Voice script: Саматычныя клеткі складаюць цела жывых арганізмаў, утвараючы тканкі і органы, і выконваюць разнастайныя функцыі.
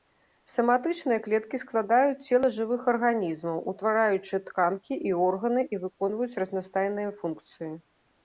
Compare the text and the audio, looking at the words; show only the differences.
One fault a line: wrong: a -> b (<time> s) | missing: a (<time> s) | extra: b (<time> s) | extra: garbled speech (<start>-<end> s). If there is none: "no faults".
no faults